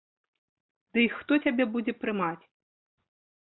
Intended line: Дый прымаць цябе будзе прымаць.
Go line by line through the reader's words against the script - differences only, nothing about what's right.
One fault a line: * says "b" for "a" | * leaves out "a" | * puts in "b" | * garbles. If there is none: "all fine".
* says "хто" for "прымаць"